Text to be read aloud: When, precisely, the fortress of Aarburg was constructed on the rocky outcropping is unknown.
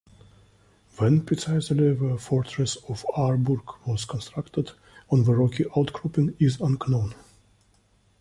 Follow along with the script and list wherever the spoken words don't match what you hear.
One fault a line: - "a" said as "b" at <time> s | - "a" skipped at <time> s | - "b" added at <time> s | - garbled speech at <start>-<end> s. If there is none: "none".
none